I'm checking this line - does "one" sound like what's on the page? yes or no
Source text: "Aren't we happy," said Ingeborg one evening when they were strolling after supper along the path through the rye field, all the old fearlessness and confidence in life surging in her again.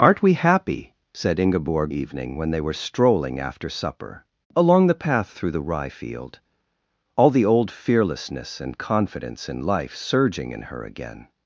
no